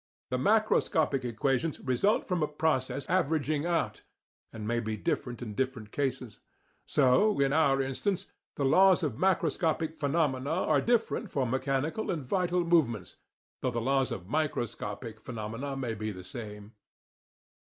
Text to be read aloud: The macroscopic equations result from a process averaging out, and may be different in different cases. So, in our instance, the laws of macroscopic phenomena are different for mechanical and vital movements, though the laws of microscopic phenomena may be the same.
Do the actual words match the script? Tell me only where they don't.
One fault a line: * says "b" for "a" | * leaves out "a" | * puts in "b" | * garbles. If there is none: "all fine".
all fine